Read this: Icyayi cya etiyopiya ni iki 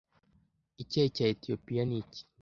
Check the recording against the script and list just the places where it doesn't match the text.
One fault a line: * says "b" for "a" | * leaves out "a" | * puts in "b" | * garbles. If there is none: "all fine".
all fine